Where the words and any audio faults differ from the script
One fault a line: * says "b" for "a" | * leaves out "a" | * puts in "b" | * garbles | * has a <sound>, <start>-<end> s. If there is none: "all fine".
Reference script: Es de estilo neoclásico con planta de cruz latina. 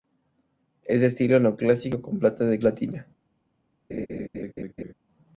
* leaves out "cruz"
* has a laugh, 3.9-4.9 s